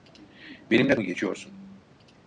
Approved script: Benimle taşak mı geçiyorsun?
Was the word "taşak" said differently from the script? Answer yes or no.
yes